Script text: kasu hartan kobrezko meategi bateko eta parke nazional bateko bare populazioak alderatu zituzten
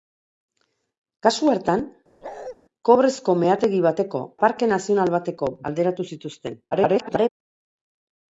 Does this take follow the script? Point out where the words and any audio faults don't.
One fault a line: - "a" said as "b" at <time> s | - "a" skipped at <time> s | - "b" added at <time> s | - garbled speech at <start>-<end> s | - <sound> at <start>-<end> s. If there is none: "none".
- bark at 2.2-2.6 s
- "eta" skipped at 4.2 s
- "bare populazioak" skipped at 5.5 s
- garbled speech at 6.7-7.3 s